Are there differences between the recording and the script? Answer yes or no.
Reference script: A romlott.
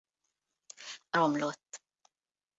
no